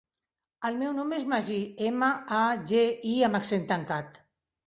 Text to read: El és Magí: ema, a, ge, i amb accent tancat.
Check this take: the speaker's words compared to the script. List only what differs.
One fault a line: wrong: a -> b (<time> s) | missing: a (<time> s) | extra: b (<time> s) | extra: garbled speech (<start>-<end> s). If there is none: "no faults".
extra: meu nom (0.8 s)